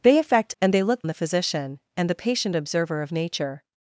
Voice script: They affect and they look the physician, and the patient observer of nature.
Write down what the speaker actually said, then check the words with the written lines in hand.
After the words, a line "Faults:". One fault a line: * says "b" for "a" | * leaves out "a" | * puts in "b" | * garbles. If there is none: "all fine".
They affect and they look the physician, and the patient observer of nature.
Faults:
all fine